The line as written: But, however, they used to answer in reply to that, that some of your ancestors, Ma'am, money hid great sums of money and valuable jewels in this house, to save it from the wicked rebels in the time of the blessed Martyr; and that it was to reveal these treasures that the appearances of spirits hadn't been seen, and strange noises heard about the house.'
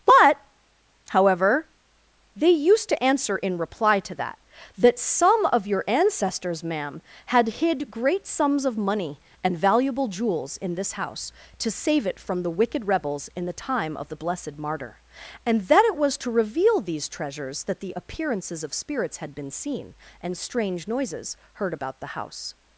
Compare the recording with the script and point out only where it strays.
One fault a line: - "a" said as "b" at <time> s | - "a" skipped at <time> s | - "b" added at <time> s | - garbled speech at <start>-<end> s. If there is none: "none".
- "money" said as "had" at 7.3 s
- "hadn't" said as "had" at 19.2 s